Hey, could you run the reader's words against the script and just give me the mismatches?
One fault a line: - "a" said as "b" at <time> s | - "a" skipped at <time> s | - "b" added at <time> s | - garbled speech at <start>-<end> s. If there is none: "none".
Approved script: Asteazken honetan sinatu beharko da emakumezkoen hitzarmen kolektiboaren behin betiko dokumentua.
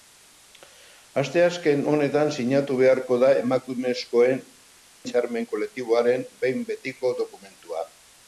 none